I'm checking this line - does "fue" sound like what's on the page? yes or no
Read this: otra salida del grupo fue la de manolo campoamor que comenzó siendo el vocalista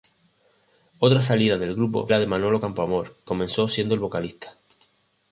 no